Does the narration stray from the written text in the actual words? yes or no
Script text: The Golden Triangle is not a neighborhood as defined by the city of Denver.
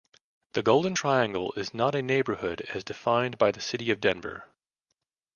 no